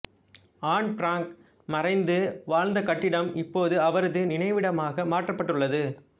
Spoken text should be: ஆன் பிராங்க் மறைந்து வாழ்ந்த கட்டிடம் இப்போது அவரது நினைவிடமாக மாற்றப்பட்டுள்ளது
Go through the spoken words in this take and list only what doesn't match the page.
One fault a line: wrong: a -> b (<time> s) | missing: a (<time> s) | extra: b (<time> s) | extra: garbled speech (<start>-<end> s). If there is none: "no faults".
no faults